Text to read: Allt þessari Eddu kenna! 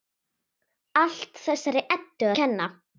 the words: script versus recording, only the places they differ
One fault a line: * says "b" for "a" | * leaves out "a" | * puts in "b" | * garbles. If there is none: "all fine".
all fine